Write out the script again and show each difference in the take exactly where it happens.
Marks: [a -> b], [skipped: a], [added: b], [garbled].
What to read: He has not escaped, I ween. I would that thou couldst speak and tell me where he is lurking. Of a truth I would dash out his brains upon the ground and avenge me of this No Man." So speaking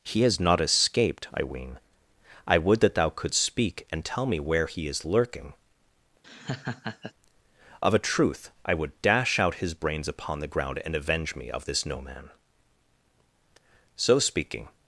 He has not escaped, I ween. I would that thou couldst speak and tell me where he is lurking. Of a truth I would dash out his brains upon the ground and avenge me of this No Man." So speaking